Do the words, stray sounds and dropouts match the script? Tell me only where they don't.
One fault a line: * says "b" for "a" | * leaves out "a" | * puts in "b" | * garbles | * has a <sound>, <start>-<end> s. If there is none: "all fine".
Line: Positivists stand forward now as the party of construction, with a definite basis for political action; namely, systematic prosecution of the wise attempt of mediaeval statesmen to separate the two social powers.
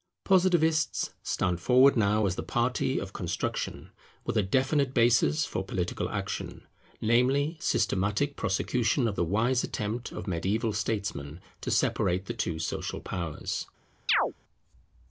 * has a chirp, 14.1-14.3 s